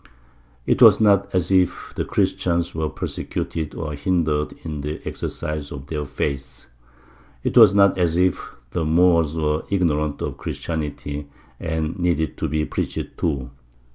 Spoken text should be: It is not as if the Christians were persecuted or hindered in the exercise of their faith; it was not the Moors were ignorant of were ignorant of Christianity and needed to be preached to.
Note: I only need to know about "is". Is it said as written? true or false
false